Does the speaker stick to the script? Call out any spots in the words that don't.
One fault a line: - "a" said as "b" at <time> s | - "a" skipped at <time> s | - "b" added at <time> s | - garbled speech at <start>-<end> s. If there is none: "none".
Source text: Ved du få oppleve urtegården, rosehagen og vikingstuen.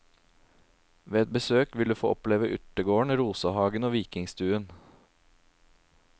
- "et besøk vil" added at 1.2 s